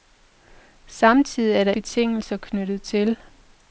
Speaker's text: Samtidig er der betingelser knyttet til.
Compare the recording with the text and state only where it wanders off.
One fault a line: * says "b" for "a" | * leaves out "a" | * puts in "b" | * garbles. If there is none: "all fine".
all fine